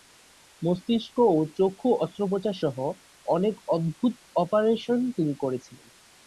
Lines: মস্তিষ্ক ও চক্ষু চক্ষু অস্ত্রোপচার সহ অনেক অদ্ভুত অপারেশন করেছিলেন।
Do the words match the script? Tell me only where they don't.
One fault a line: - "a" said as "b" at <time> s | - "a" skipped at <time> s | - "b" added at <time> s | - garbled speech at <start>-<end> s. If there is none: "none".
- "চক্ষু" skipped at 1.9 s
- "তিনি" added at 5.2 s